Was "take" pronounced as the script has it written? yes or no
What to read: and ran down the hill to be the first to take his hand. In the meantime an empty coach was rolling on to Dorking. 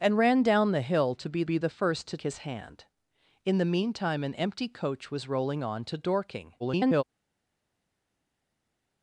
no